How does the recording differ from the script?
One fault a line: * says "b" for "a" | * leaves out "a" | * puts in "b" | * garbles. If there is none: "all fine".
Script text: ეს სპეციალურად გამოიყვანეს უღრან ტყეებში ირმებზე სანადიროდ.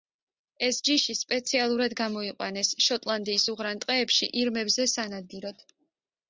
* puts in "ჯიში"
* puts in "შოტლანდიის"